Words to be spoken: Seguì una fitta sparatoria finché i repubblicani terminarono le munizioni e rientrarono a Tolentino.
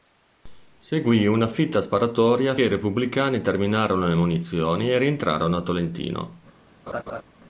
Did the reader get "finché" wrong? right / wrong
wrong